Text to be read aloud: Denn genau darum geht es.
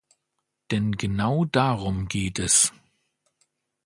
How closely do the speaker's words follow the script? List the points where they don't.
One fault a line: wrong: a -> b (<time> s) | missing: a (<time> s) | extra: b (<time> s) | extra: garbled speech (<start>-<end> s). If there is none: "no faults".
no faults